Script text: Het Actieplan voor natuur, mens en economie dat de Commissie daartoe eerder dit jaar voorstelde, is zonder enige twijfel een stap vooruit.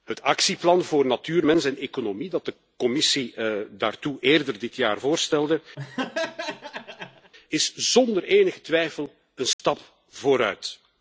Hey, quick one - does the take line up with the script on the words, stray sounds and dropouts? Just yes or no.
no